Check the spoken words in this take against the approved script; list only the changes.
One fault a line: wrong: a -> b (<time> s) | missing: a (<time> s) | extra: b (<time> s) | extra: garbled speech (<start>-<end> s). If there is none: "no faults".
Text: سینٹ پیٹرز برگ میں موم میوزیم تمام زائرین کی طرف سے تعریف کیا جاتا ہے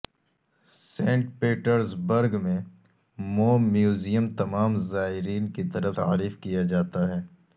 missing: سے (6.0 s)